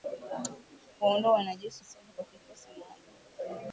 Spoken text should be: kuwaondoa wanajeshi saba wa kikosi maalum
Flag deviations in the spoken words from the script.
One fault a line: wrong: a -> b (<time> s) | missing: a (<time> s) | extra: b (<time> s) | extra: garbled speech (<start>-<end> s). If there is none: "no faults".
no faults